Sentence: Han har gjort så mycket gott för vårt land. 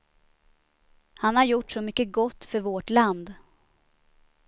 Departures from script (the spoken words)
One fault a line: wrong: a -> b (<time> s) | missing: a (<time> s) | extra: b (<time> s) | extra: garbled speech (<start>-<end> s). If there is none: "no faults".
no faults